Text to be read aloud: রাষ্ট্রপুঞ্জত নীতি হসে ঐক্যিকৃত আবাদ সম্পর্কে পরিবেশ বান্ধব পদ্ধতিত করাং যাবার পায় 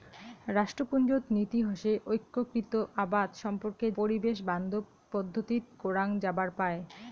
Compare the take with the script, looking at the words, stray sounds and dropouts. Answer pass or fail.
pass